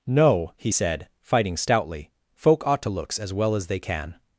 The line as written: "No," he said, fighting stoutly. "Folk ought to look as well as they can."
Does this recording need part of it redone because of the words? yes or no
yes